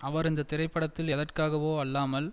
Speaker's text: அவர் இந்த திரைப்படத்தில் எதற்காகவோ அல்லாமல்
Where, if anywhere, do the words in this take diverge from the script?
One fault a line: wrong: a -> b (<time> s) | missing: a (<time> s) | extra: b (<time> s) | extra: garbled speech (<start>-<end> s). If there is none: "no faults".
no faults